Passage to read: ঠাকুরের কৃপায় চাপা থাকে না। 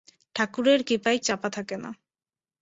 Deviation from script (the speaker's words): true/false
false